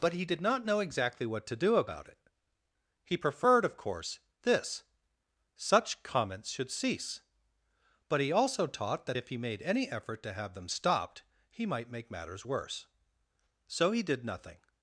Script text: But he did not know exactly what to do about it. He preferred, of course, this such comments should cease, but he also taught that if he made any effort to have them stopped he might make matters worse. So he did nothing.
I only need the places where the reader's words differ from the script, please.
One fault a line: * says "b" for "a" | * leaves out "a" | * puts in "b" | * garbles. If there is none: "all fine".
all fine